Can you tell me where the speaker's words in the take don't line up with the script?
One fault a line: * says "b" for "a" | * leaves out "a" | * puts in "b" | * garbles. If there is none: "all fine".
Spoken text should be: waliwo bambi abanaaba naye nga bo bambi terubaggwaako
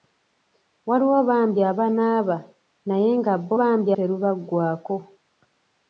all fine